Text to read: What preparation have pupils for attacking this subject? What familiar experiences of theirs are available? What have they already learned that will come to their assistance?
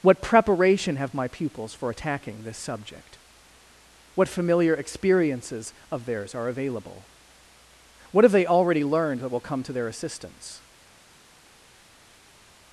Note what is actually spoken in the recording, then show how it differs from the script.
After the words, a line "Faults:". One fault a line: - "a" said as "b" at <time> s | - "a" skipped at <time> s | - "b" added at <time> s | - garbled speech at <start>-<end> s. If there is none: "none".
What preparation have my pupils for attacking this subject? What familiar experiences of theirs are available? What have they already learned that will come to their assistance?
Faults:
- "my" added at 1.1 s